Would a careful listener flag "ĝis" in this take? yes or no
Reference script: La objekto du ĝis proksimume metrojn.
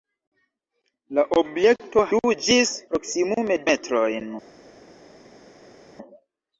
no